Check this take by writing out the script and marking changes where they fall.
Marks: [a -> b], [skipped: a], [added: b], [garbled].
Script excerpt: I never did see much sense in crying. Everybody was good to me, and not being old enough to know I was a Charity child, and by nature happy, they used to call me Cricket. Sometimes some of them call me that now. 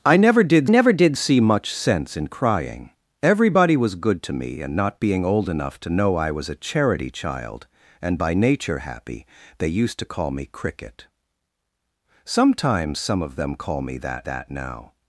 I never did [added: never did] see much sense in crying. Everybody was good to me, and not being old enough to know I was a Charity child, and by nature happy, they used to call me Cricket. Sometimes some of them call me that [added: that] now.